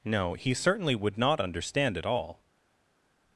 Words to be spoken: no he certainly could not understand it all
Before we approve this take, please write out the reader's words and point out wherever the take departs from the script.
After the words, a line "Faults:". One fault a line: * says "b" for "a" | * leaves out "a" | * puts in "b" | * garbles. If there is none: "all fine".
no he certainly would not understand it all
Faults:
* says "would" for "could"